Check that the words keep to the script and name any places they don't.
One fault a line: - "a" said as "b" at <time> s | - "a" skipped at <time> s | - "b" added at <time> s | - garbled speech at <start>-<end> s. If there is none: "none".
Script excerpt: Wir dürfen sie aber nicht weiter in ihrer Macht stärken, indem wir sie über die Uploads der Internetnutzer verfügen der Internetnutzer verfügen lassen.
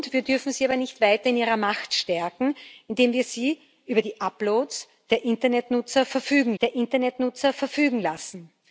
none